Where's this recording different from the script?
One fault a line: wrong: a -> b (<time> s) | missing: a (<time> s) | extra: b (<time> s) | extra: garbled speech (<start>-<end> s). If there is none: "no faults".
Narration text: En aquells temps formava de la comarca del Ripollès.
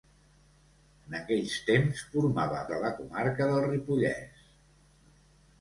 no faults